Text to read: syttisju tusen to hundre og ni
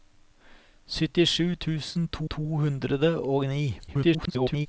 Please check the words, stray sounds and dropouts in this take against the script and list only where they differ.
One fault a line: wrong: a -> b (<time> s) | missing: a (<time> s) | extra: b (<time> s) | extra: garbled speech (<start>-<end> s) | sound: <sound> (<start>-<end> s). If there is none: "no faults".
extra: to (2.2 s)
extra: garbled speech (3.9-4.7 s)